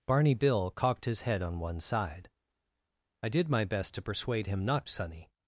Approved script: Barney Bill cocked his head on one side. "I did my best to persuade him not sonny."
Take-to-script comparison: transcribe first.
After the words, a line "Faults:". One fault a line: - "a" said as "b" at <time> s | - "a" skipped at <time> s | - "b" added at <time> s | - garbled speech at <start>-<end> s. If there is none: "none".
Barney Bill cocked his head on one side. "I did my best to persuade him not sonny."
Faults:
none